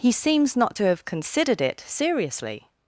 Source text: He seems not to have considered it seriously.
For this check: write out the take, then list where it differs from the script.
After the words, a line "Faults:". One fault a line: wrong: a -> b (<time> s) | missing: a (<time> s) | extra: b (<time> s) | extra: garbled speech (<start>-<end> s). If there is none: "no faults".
He seems not to have considered it seriously.
Faults:
no faults